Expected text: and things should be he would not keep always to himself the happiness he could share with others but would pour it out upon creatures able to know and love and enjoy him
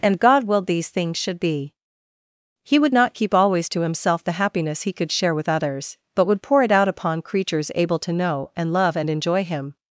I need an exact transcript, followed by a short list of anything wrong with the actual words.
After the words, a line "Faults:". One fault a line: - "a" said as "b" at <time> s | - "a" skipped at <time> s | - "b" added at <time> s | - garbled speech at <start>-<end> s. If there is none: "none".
and god willed these things should be he would not keep always to himself the happiness he could share with others but would pour it out upon creatures able to know and love and enjoy him
Faults:
- "god willed these" added at 0.2 s